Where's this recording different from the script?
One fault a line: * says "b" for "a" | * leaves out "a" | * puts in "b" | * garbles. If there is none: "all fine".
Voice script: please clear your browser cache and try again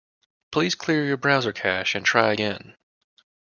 all fine